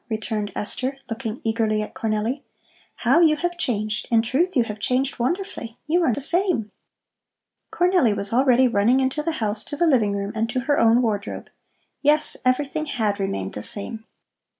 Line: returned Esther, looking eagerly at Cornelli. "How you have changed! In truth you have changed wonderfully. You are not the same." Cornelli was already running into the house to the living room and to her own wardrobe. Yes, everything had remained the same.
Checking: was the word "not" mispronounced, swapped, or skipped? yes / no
yes